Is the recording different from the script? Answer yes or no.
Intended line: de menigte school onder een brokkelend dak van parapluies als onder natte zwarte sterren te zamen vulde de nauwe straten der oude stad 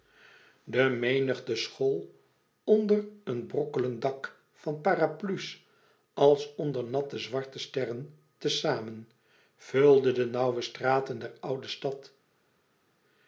no